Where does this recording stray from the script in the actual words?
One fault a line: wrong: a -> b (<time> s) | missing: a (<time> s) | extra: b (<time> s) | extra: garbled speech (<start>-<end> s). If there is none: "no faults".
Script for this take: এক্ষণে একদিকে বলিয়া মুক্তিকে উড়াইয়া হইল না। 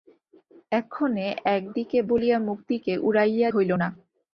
no faults